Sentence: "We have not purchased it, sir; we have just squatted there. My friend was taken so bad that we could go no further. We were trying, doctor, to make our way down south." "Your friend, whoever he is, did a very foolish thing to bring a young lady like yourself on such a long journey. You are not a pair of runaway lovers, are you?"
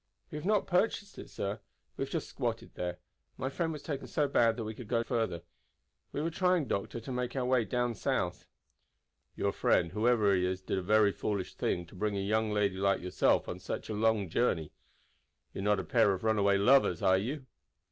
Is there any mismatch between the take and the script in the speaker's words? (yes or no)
yes